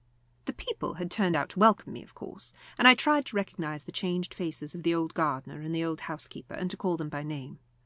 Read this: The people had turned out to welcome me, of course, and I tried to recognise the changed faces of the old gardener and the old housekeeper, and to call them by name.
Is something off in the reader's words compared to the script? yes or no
no